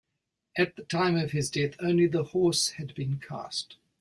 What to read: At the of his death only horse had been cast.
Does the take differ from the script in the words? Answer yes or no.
yes